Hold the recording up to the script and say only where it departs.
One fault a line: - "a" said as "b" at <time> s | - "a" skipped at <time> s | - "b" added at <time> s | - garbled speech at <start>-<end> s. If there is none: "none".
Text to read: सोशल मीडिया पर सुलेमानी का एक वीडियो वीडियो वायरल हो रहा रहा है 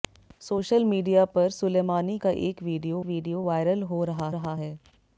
none